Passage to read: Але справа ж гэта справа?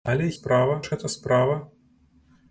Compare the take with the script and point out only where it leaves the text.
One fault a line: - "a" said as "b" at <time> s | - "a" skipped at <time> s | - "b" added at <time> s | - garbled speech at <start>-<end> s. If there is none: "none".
none